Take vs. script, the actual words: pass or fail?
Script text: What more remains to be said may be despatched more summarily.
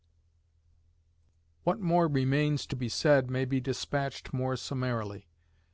pass